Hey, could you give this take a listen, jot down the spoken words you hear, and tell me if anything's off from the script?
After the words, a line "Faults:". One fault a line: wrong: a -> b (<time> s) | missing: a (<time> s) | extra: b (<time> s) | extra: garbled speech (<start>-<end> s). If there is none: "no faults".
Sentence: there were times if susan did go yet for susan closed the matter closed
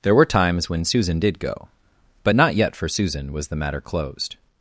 there were times when susan did go but not yet for susan was the matter closed
Faults:
wrong: if -> when (0.7 s)
extra: but not (2.2 s)
wrong: closed -> was (3.3 s)